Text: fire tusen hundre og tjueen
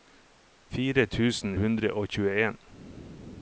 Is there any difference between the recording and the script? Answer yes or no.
no